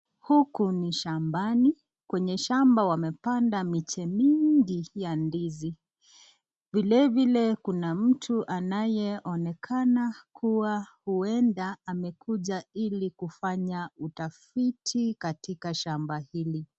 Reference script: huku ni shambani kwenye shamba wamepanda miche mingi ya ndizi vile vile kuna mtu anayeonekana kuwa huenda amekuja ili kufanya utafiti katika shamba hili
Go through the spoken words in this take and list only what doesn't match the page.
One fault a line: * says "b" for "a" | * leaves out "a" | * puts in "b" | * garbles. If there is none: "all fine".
all fine